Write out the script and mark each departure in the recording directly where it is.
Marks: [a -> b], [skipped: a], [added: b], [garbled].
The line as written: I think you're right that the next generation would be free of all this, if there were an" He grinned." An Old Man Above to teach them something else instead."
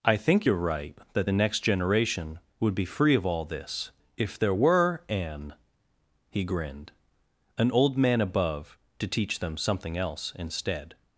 I think you're right that the next generation would be free of all this, if there were an" He grinned." An Old Man Above to teach them something else instead."